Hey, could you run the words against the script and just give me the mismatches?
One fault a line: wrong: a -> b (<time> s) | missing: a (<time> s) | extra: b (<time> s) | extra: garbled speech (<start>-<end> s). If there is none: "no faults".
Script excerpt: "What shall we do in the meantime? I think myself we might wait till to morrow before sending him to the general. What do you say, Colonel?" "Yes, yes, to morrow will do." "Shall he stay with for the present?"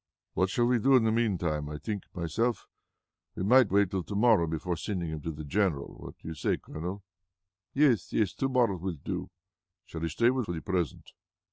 no faults